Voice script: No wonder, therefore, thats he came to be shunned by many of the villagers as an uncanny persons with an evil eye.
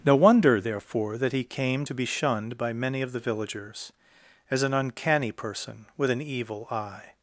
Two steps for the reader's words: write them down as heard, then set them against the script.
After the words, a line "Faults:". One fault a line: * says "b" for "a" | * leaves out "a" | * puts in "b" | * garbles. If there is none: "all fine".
No wonder, therefore, that he came to be shunned by many of the villagers as an uncanny person with an evil eye.
Faults:
* says "that" for "thats"
* says "person" for "persons"